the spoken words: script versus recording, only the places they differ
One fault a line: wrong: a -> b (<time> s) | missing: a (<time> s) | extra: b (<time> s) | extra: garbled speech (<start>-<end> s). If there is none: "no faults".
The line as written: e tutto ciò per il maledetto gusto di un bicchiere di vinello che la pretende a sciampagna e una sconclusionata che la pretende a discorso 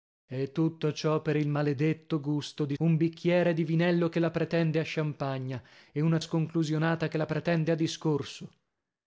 no faults